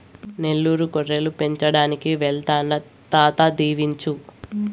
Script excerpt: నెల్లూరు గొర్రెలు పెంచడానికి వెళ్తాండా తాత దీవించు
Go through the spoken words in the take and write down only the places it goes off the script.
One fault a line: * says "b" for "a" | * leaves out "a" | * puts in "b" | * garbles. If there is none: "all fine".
all fine